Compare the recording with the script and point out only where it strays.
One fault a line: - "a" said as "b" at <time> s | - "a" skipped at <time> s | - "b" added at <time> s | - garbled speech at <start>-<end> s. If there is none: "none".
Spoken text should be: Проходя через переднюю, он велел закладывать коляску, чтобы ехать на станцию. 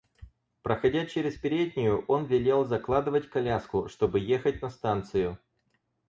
none